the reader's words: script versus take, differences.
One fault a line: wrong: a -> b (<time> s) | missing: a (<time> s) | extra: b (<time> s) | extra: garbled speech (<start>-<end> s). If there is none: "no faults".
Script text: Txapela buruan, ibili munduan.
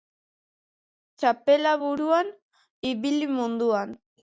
no faults